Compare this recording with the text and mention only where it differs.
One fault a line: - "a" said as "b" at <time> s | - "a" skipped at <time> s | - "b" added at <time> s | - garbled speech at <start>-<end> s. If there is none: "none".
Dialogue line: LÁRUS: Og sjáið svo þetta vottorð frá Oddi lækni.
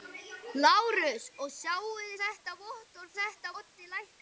- "svo" skipped at 2.1 s
- "frá" said as "þetta" at 3.2 s